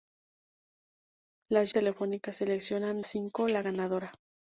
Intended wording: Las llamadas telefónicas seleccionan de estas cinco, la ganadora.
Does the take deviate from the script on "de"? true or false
true